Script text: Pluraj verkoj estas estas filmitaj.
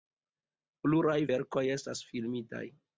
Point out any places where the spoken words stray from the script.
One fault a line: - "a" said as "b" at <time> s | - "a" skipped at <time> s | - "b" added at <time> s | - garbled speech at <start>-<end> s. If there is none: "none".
- "estas" skipped at 2.0 s